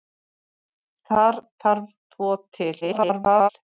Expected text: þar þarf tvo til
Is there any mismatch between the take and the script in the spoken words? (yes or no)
yes